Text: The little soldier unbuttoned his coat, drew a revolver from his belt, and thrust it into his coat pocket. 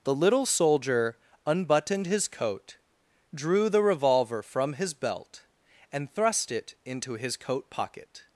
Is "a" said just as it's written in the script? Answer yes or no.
no